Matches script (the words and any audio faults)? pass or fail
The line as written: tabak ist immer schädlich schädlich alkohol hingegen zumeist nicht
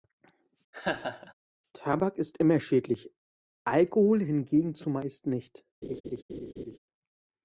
fail